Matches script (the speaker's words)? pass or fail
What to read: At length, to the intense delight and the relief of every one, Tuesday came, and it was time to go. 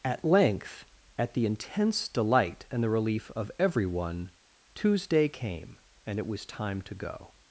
fail